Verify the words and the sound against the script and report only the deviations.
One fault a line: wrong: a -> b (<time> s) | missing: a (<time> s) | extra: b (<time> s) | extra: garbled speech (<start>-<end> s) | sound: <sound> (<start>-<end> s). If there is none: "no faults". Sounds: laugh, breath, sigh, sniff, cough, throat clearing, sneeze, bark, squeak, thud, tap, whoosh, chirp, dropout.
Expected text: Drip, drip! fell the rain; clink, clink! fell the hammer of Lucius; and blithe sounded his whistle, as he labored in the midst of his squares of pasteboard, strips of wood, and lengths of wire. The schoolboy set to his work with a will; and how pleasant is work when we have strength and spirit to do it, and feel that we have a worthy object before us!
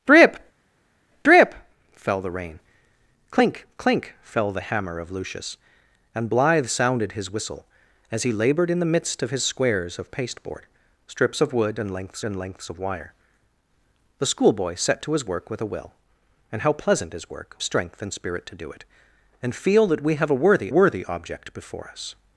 extra: and lengths (12.2 s)
missing: when we have (17.6 s)
extra: worthy (20.7 s)